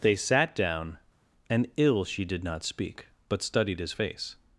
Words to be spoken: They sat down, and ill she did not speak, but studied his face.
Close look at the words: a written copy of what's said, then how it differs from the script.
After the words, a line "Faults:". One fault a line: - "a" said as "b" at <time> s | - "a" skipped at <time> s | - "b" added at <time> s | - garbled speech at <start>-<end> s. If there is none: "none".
They sat down, and ill she did not speak, but studied his face.
Faults:
none